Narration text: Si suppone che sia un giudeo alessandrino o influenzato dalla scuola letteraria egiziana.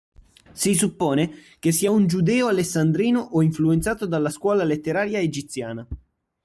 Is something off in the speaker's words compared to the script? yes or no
no